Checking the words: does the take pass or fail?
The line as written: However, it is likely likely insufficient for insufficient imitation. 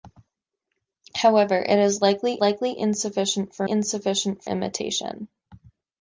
pass